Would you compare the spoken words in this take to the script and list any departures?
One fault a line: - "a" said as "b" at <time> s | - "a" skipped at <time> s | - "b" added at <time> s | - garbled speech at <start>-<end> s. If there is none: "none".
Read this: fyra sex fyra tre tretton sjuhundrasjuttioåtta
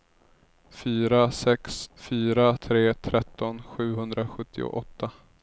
none